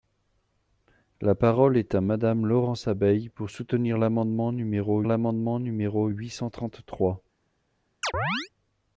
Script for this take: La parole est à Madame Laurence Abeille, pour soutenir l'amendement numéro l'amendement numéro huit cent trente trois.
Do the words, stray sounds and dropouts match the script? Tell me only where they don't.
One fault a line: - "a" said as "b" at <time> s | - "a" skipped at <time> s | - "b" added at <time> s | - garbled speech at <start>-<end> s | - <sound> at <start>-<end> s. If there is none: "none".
- chirp at 8.0-8.5 s